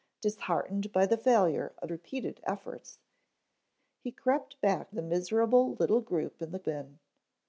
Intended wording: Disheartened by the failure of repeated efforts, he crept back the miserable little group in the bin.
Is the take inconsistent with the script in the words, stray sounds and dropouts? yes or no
no